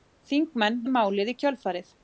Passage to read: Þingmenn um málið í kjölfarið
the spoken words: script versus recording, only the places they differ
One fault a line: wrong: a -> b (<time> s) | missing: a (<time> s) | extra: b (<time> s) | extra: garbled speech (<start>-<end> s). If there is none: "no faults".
no faults